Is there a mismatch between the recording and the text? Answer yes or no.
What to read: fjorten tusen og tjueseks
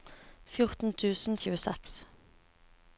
no